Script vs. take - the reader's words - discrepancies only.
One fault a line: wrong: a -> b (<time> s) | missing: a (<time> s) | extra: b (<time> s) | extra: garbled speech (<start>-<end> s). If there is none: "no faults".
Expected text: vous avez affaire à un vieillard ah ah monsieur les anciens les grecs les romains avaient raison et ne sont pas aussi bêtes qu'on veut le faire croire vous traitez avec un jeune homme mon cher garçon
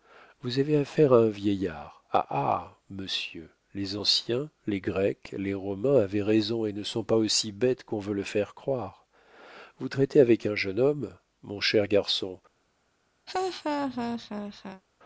no faults